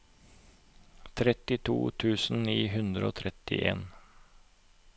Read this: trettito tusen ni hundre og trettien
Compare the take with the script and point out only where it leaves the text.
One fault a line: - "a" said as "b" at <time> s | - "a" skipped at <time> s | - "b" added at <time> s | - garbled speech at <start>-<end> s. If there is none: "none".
none